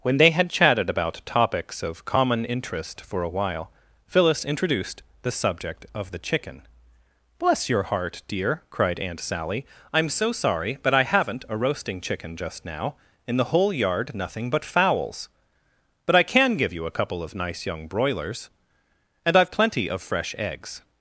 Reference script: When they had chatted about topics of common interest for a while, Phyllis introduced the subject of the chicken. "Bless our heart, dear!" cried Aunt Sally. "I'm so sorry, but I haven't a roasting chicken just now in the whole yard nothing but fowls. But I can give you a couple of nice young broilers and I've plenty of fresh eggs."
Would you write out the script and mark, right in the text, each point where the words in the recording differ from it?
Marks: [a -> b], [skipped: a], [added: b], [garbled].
When they had chatted about topics of common interest for a while, Phyllis introduced the subject of the chicken. "Bless [our -> your] heart, dear!" cried Aunt Sally. "I'm so sorry, but I haven't a roasting chicken just now in the whole yard nothing but fowls. But I can give you a couple of nice young broilers and I've plenty of fresh eggs."